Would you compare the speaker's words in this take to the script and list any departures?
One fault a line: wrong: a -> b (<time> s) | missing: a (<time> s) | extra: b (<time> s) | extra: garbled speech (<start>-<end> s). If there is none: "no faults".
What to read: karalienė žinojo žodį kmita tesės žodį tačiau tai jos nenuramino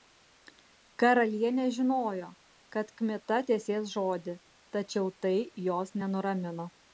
wrong: žodį -> kad (2.8 s)